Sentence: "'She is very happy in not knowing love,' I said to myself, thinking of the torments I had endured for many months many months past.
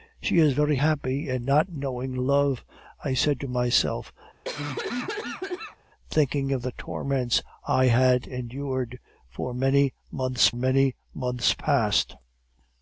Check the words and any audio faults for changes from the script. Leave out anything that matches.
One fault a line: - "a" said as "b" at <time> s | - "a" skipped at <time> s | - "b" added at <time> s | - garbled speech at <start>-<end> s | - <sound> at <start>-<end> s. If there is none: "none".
- cough at 4.4-5.8 s